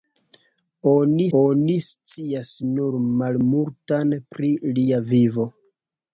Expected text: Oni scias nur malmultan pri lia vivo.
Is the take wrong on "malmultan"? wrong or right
right